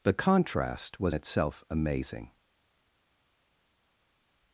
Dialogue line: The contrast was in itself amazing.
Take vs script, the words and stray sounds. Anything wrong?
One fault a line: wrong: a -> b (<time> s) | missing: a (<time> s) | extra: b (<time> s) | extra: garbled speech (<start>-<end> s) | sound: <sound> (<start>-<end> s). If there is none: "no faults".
missing: in (1.1 s)